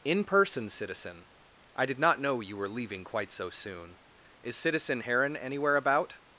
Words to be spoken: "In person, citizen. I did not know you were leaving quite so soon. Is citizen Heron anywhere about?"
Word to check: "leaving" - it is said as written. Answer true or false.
true